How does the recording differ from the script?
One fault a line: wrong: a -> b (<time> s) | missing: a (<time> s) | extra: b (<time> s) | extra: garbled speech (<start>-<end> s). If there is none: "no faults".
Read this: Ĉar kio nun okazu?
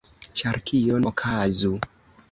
missing: nun (1.0 s)